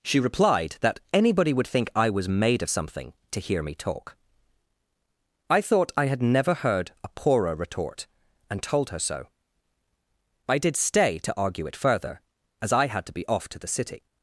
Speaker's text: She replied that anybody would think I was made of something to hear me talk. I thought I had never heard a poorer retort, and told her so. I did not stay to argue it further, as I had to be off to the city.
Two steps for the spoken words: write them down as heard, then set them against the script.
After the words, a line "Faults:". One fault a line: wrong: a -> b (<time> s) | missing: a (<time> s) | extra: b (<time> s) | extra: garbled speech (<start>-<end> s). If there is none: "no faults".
She replied that anybody would think I was made of something to hear me talk. I thought I had never heard a poorer retort, and told her so. I did stay to argue it further, as I had to be off to the city.
Faults:
missing: not (10.8 s)